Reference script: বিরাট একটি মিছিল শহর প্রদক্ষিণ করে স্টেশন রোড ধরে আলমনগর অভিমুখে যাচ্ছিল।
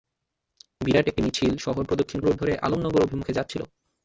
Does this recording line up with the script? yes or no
no